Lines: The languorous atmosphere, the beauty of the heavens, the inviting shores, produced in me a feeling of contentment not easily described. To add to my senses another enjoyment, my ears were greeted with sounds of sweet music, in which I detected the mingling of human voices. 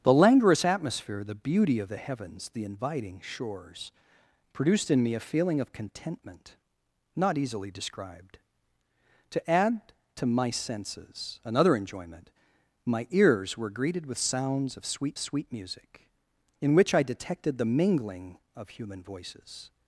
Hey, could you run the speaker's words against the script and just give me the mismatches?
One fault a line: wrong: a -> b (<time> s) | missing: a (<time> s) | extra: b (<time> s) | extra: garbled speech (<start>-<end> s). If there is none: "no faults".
extra: sweet (15.2 s)